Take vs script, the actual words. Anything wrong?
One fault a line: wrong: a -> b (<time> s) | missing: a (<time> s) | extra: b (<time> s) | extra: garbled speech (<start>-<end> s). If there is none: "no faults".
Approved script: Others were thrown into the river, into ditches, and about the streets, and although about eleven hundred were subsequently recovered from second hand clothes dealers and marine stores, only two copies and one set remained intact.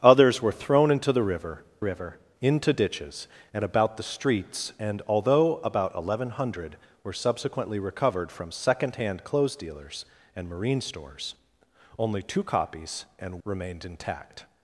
extra: river (1.8 s)
missing: one set (13.4 s)